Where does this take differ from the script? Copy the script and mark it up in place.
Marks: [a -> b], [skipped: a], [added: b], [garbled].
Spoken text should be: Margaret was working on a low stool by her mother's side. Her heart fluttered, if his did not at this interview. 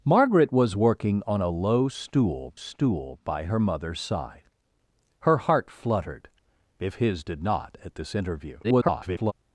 Margaret was working on a low stool [added: stool] by her mother's side. Her heart fluttered, if his did not at this interview. [garbled]